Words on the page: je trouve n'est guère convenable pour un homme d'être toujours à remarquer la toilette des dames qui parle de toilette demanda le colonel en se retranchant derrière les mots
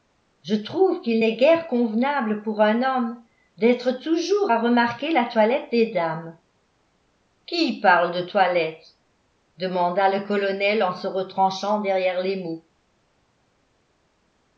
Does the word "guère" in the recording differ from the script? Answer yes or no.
no